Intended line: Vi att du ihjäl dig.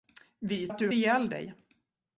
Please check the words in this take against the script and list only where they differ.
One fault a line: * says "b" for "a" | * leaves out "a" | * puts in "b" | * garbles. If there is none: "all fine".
all fine